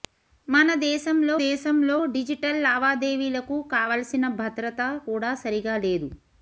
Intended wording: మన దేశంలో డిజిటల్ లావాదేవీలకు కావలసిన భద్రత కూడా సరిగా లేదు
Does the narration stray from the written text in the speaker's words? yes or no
yes